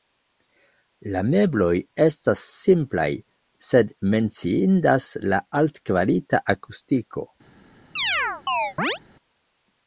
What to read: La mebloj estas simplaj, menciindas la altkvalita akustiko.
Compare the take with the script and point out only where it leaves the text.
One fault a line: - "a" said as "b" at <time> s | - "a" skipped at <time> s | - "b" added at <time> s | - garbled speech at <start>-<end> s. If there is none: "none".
- "sed" added at 3.7 s